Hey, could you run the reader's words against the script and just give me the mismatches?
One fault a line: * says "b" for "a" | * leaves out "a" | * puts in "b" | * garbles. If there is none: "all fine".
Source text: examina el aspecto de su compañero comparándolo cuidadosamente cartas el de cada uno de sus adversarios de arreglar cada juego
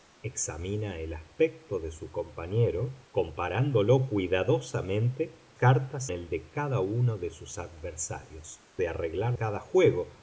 all fine